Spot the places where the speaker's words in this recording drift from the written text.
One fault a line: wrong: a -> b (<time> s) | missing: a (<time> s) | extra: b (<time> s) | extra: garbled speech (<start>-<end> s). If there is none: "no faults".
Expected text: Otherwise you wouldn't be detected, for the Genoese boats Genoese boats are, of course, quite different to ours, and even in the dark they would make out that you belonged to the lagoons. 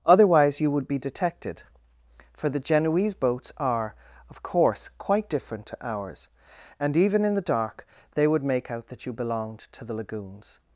wrong: wouldn't -> would (0.7 s)
missing: Genoese boats (3.5 s)